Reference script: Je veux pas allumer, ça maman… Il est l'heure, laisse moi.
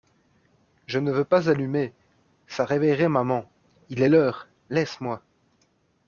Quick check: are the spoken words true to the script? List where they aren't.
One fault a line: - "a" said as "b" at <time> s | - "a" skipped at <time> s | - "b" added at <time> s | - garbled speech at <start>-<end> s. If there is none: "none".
- "ne" added at 1.0 s
- "réveillerait" added at 2.6 s